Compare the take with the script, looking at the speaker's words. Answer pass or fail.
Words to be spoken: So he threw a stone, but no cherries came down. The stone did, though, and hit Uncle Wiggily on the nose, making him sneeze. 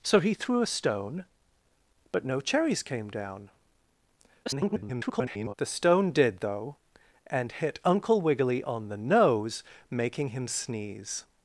fail